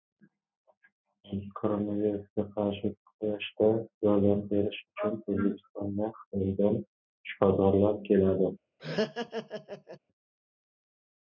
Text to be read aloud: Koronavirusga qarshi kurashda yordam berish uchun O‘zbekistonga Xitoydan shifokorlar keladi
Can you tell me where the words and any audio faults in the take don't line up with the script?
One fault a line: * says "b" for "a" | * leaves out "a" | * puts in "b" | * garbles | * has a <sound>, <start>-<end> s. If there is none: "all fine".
* has a laugh, 8.8-10.0 s